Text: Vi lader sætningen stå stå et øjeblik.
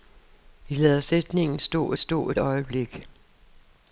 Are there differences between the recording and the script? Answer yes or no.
no